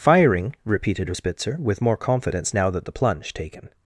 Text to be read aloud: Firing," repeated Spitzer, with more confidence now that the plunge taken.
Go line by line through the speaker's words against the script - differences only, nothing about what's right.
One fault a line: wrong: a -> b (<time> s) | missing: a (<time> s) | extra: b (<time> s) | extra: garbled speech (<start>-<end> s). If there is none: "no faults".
no faults